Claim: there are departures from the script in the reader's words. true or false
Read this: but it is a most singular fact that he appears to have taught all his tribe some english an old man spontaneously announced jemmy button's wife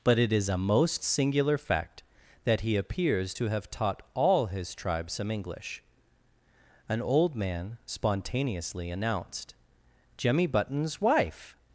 false